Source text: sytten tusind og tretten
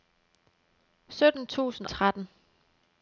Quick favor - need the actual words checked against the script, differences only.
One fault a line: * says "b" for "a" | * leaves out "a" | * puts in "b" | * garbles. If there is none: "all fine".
* leaves out "og"